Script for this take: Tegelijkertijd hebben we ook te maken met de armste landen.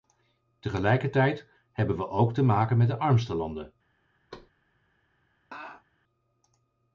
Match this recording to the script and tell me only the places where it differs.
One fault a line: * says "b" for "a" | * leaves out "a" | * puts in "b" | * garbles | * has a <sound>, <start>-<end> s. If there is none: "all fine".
* has a thud, 4.3-4.5 s
* has a laugh, 5.5-5.8 s